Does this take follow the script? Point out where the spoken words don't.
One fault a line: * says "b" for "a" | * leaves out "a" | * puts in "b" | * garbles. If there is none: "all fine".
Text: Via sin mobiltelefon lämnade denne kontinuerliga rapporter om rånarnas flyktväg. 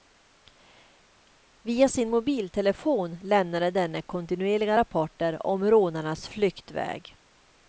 all fine